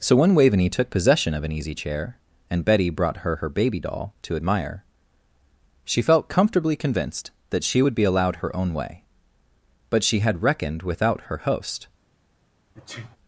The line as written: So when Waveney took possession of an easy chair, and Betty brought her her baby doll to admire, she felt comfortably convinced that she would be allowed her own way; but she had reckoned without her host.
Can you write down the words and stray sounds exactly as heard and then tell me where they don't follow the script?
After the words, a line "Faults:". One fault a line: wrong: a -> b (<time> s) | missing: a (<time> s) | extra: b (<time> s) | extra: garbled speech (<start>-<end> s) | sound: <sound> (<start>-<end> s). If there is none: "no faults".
So when Waveney took possession of an easy chair, and Betty brought her her baby doll to admire, she felt comfortably convinced that she would be allowed her own way; but she had reckoned without her host.
Faults:
sound: sneeze (12.8-13.2 s)